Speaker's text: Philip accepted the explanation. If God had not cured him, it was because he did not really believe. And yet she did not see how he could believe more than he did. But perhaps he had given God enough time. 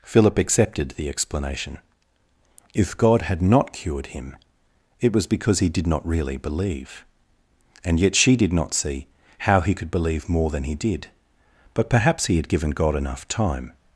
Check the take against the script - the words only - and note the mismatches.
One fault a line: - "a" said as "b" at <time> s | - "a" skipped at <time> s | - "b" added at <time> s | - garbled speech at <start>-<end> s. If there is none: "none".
none